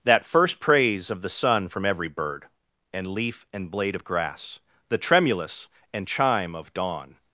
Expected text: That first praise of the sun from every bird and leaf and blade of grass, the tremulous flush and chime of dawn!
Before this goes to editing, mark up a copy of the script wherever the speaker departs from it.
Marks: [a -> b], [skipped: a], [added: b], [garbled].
That first praise of the sun from every bird and leaf and blade of grass, the tremulous [skipped: flush] and chime of dawn!